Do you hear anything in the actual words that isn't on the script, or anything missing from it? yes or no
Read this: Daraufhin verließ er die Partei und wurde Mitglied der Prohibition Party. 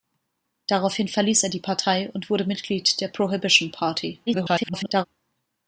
yes